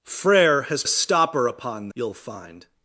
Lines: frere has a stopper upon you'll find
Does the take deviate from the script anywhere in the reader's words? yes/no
no